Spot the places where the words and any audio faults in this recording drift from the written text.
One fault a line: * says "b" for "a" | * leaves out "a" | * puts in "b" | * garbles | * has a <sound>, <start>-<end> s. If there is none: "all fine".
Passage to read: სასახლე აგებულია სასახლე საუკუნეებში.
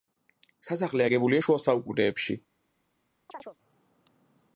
* says "შუა" for "სასახლე"
* has a chirp, 3.3-3.6 s